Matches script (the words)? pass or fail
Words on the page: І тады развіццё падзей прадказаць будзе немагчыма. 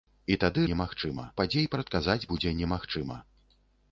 fail